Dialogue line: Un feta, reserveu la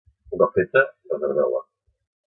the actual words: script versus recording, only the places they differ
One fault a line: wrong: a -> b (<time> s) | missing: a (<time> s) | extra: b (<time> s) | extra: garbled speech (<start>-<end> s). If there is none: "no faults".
extra: cop (0.4 s)